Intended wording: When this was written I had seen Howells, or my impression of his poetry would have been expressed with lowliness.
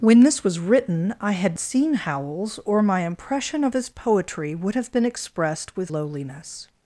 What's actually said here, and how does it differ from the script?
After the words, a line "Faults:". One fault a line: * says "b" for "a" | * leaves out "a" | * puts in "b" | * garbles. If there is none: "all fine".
When this was written I had seen Howells, or my impression of his poetry would have been expressed with lowliness.
Faults:
all fine